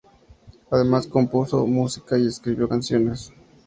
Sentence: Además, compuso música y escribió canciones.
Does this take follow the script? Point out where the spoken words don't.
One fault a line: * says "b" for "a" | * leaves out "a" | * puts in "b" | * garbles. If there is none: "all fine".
all fine